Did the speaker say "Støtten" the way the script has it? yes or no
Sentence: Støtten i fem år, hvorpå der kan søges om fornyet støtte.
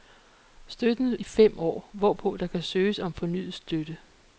yes